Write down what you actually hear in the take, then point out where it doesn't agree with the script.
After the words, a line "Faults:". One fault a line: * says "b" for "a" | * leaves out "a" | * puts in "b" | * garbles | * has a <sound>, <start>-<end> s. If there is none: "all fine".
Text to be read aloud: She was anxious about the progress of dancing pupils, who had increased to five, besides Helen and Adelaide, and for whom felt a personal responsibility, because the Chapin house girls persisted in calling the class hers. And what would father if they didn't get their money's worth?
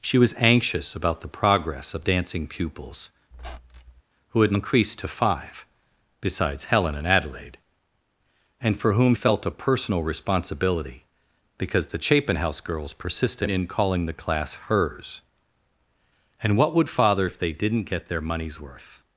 She was anxious about the progress of dancing pupils, who had increased to five, besides Helen and Adelaide, and for whom felt a personal responsibility, because the Chapin house girls persisted in calling the class hers. And what would father if they didn't get their money's worth?
Faults:
* has a squeak, 3.3-4.0 s